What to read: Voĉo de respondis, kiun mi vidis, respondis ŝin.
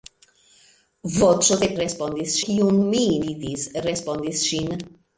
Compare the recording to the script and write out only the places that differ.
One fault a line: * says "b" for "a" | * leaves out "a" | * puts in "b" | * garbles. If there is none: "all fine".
all fine